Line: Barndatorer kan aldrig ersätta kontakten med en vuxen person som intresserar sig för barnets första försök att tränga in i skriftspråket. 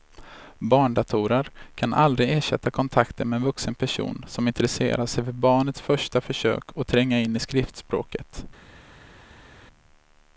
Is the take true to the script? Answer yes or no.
yes